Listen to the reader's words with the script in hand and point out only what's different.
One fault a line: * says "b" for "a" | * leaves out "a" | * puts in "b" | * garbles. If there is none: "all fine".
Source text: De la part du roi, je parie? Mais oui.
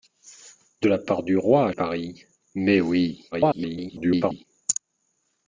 * leaves out "je"
* garbles